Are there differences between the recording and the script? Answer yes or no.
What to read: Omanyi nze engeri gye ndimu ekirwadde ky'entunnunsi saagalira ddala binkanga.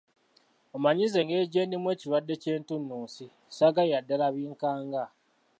no